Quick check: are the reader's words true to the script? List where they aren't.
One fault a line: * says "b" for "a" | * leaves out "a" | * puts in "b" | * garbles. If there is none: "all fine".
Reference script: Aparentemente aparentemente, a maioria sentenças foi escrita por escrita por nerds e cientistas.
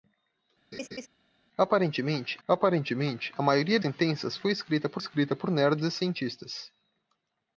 all fine